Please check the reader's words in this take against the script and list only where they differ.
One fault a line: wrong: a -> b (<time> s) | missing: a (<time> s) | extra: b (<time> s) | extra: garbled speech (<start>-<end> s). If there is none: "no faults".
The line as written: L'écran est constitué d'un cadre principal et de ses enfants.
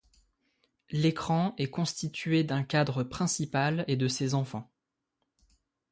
no faults